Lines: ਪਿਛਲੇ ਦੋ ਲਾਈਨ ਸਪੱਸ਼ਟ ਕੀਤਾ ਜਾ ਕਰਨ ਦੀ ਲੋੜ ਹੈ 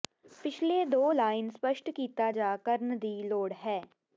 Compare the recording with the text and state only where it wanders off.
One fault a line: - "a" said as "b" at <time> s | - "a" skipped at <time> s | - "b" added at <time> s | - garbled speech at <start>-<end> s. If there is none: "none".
none